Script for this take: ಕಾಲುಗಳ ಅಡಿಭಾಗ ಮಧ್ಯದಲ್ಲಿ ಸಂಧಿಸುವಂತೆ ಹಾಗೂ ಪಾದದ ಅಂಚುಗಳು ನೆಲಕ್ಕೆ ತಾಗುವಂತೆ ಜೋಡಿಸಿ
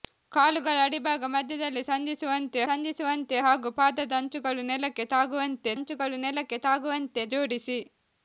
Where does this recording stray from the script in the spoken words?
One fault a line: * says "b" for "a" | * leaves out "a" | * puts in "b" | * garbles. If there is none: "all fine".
* puts in "ಸಂಧಿಸುವಂತೆ"
* puts in "ಅಂಚುಗಳು ನೆಲಕ್ಕೆ ತಾಗುವಂತೆ"